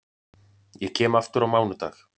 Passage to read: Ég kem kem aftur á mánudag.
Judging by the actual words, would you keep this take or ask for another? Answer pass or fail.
fail